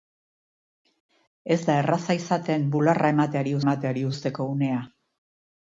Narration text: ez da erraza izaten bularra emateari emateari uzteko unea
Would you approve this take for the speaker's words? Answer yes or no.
yes